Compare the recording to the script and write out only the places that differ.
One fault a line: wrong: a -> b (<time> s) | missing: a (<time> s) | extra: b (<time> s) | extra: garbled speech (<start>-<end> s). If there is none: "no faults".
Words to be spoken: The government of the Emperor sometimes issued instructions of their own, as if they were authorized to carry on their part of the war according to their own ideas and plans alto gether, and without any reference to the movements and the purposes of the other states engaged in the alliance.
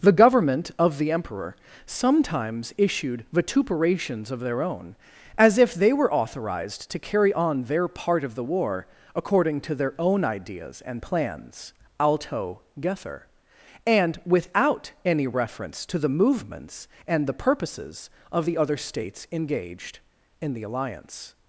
wrong: instructions -> vituperations (3.3 s)